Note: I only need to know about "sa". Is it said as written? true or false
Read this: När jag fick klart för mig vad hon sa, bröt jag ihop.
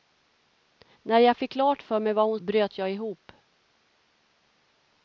false